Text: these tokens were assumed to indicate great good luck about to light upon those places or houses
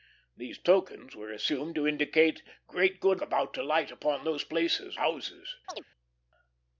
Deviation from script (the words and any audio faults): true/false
true